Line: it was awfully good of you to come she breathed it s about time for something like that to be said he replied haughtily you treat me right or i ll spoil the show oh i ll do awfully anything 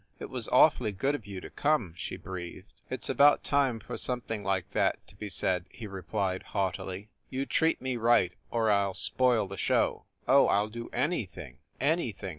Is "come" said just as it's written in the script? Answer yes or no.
yes